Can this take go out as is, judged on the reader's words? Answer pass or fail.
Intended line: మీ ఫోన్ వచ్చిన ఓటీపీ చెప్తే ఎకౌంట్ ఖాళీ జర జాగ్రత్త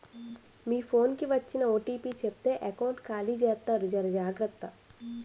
fail